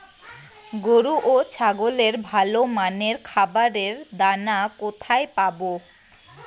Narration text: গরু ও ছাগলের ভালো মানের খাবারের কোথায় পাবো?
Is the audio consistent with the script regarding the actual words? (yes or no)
no